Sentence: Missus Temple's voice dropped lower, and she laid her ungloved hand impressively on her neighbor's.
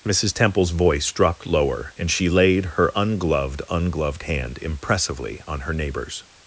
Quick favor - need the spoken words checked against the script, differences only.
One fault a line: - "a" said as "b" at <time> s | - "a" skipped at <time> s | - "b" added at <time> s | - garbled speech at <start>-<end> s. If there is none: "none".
- "ungloved" added at 3.7 s